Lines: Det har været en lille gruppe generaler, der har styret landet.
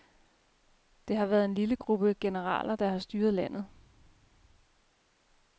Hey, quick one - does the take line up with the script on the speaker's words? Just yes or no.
yes